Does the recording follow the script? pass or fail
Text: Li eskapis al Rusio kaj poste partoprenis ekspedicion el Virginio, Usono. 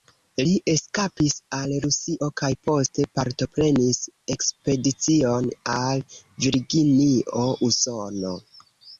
fail